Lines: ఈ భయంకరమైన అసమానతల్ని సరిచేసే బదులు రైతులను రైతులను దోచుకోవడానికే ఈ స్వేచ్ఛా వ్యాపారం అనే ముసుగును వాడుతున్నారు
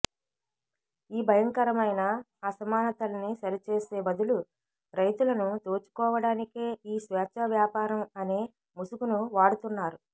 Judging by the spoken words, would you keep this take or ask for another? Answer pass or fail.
fail